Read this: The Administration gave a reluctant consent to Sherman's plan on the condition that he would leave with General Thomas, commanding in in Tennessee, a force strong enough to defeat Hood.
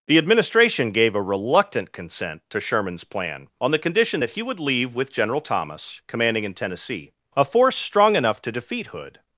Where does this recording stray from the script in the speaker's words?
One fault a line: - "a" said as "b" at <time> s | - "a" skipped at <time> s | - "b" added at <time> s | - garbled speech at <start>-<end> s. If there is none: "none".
- "in" skipped at 6.5 s